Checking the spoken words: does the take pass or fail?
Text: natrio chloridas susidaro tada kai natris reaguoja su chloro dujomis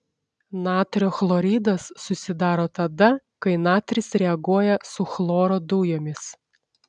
pass